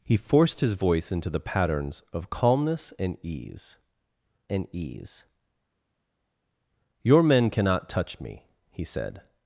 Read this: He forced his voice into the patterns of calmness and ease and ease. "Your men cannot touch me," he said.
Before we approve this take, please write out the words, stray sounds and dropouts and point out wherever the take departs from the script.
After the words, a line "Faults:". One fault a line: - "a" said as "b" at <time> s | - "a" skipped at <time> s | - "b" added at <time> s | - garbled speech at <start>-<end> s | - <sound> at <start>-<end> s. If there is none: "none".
He forced his voice into the patterns of calmness and ease and ease. "Your men cannot touch me," he said.
Faults:
none